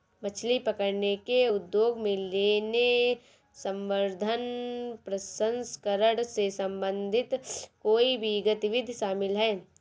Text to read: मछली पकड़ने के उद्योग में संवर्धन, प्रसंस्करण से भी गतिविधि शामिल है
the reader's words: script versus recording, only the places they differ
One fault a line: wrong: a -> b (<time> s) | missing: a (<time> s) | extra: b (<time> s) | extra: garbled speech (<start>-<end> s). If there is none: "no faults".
extra: लेने (2.2 s)
extra: संबंधित कोई (6.5 s)